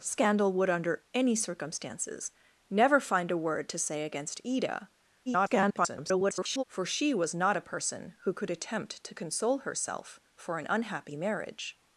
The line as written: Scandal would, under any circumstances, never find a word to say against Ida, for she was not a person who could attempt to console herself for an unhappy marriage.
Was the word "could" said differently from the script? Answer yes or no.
no